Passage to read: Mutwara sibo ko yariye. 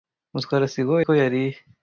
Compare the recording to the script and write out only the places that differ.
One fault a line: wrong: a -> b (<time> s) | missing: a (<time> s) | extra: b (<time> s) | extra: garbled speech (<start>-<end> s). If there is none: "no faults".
no faults